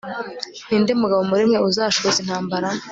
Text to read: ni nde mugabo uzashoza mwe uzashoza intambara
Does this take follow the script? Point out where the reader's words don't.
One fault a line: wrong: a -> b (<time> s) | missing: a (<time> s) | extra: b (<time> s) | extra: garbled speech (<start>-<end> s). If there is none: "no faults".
wrong: uzashoza -> muri (1.3 s)